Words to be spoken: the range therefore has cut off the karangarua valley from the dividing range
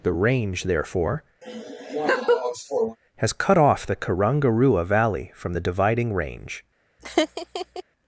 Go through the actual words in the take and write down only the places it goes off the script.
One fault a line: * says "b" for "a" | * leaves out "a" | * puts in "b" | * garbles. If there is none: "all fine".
all fine